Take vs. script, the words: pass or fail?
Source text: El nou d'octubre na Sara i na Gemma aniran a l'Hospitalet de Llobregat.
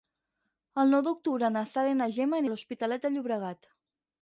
fail